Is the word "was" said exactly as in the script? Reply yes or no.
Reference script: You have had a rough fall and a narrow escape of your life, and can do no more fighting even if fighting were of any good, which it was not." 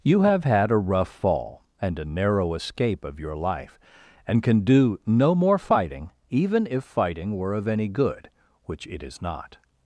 no